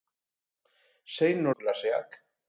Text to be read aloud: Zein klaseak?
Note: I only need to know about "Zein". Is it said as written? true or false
true